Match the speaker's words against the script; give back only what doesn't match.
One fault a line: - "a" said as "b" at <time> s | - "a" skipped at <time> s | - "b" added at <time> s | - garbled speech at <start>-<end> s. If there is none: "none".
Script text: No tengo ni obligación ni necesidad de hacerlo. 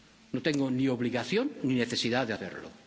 none